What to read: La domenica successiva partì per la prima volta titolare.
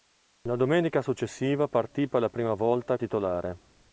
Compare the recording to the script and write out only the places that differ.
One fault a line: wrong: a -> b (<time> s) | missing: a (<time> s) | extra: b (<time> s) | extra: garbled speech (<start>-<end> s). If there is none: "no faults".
no faults